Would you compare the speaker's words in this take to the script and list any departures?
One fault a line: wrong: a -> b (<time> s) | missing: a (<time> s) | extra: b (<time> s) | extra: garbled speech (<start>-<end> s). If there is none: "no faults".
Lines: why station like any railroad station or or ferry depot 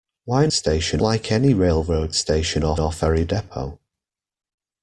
no faults